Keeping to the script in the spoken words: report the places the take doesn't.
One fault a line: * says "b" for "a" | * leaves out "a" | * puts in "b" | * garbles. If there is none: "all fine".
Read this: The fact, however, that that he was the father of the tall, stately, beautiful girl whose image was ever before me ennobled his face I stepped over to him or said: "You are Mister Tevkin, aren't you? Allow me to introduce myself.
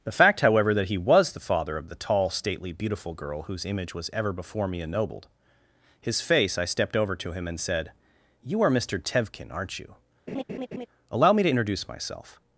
* leaves out "that"
* says "and" for "or"